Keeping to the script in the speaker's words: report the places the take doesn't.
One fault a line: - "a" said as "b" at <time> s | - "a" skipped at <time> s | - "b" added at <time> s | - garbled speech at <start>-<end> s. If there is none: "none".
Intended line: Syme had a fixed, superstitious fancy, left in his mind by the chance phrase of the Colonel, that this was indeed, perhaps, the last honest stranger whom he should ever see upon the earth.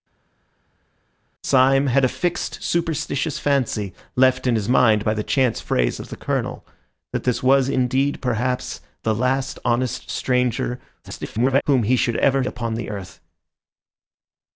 - garbled speech at 11.0-11.6 s
- "see" skipped at 12.4 s